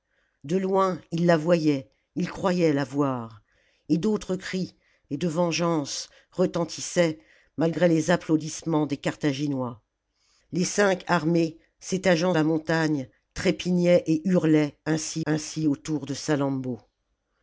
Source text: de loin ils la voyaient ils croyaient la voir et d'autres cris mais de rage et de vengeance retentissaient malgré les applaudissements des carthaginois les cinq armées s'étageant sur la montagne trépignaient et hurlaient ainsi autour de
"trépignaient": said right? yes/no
yes